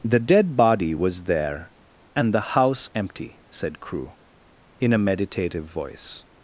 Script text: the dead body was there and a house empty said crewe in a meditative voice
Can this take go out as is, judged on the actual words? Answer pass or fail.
fail